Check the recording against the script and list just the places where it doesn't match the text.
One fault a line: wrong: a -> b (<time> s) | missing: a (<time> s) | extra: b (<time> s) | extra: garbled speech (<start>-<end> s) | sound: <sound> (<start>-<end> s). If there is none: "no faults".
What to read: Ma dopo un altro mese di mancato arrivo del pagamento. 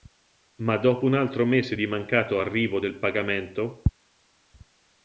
no faults